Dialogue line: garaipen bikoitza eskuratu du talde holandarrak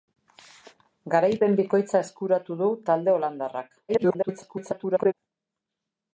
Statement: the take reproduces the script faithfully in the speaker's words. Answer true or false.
false